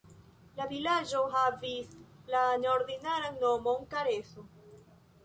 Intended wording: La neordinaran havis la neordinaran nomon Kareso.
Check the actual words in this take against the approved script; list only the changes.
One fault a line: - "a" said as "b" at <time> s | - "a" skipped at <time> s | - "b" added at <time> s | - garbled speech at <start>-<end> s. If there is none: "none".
- "neordinaran" said as "vilaĝo" at 0.7 s